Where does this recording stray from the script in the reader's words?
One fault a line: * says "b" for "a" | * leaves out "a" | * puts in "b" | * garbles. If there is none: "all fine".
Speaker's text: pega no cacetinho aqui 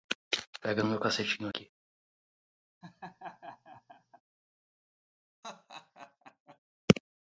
* puts in "meu"